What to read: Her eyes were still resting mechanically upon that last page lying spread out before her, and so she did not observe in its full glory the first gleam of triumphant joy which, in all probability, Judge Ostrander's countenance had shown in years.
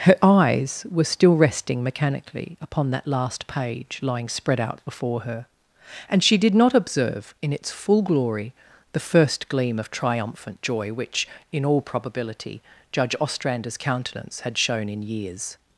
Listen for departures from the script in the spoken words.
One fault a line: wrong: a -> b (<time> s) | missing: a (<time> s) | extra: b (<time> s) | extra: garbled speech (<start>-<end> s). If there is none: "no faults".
missing: so (6.2 s)